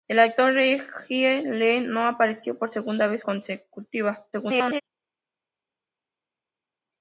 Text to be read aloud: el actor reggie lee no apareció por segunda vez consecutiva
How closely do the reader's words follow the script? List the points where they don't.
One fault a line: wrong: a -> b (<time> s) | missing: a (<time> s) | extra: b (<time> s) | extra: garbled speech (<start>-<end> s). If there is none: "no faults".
extra: garbled speech (4.3-4.8 s)